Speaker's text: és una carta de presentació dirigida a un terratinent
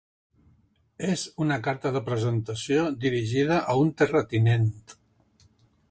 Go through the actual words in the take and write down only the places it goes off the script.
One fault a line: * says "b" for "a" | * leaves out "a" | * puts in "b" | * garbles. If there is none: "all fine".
all fine